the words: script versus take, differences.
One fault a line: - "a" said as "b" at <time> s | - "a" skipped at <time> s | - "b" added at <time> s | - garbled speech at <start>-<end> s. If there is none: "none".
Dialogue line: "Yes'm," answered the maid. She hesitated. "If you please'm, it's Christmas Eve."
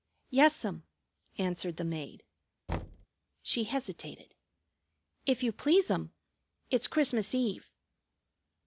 none